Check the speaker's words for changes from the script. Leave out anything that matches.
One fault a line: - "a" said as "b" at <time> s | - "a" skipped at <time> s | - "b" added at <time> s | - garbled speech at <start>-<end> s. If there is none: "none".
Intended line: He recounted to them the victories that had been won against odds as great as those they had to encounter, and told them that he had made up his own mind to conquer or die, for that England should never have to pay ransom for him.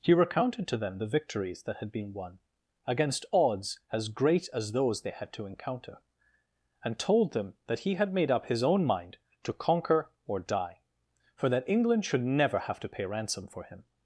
none